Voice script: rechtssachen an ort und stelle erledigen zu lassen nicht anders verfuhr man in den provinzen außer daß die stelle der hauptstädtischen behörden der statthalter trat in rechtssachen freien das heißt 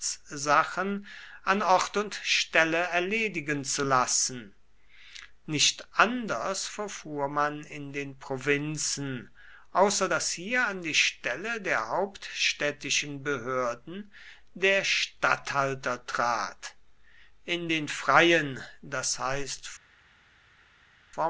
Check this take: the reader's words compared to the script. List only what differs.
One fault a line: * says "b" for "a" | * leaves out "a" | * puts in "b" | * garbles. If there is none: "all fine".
* puts in "hier an"
* says "den" for "rechtssachen"